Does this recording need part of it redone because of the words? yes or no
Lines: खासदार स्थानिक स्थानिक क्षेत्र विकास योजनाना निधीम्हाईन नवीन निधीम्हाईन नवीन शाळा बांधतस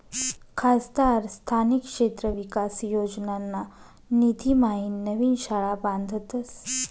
yes